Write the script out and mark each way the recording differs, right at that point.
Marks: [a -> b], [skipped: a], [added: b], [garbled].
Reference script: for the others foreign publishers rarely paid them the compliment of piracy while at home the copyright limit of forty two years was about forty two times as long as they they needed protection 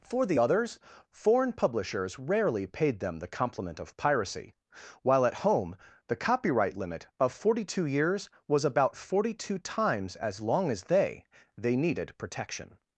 for the others foreign publishers rarely paid them the compliment of piracy while at home the copyright limit of forty two years was about forty two times as long as they they needed protection